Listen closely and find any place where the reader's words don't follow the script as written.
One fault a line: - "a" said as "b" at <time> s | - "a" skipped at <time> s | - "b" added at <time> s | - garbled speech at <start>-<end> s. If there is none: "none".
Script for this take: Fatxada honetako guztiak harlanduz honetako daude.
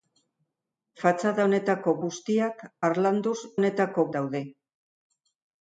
none